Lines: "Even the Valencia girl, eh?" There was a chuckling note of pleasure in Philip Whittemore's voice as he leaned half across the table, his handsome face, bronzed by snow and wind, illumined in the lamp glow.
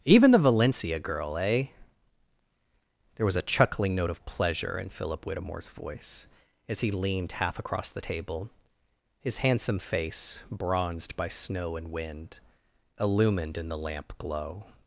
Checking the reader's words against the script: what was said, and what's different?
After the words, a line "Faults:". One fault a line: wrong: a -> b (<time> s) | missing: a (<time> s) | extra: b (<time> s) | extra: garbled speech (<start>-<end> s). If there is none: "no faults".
"Even the Valencia girl, eh?" There was a chuckling note of pleasure in Philip Whittemore's voice as he leaned half across the table, his handsome face, bronzed by snow and wind, illumined in the lamp glow.
Faults:
no faults